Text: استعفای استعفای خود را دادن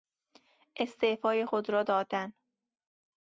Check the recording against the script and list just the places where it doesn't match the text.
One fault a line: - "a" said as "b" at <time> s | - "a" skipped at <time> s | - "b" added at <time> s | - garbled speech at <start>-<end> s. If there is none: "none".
- "استعفای" skipped at 1.4 s